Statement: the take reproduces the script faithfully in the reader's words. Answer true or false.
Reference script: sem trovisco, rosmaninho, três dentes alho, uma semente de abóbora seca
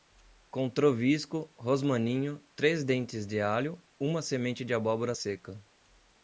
false